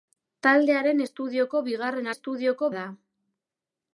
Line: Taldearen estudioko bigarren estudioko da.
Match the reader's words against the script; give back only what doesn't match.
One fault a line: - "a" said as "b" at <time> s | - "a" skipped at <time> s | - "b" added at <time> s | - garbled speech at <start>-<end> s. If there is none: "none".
none